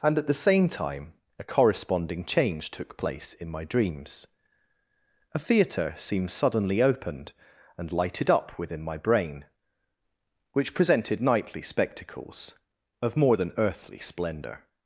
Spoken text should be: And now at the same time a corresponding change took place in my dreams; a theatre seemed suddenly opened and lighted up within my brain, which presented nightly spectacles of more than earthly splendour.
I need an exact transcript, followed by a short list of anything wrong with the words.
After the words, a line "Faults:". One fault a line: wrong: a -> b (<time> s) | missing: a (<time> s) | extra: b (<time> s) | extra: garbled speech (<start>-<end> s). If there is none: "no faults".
And at the same time a corresponding change took place in my dreams; a theatre seemed suddenly opened and lighted up within my brain, which presented nightly spectacles of more than earthly splendour.
Faults:
missing: now (0.2 s)